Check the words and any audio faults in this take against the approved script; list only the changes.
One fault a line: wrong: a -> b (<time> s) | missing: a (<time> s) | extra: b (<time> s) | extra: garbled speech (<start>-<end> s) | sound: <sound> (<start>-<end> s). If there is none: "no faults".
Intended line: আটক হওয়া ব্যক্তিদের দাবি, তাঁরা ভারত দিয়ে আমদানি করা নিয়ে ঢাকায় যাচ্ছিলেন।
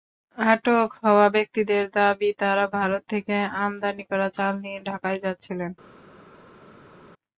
wrong: দিয়ে -> থেকে (3.1 s)
extra: চাল (4.3 s)